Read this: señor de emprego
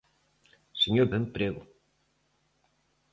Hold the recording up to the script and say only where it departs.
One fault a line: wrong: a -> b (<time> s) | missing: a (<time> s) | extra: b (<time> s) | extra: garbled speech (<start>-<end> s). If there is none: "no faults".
no faults